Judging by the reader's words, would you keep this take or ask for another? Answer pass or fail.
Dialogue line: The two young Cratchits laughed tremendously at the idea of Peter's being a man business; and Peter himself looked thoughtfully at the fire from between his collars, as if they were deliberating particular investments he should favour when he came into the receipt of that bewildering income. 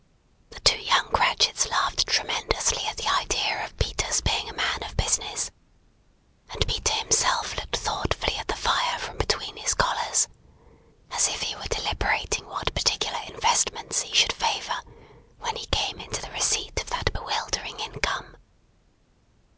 fail